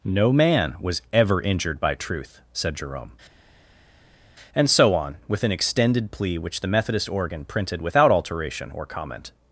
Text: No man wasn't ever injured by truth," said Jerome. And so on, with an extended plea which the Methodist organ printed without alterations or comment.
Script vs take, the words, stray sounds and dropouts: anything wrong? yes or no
yes